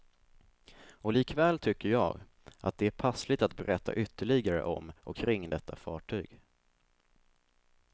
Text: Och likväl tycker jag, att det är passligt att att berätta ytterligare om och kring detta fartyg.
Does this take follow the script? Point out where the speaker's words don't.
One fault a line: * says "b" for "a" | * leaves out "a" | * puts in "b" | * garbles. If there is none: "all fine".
* leaves out "att"